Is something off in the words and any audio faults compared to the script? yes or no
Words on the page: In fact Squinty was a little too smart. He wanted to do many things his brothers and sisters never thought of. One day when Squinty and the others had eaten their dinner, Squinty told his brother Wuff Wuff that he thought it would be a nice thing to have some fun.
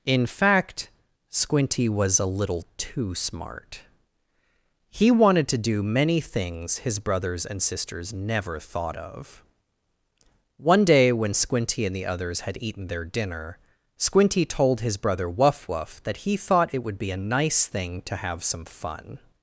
no